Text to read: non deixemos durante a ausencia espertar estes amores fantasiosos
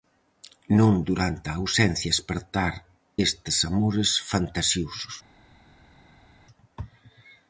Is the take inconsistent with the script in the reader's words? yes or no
yes